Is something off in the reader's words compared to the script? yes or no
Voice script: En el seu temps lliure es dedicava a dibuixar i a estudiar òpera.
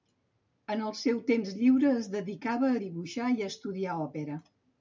no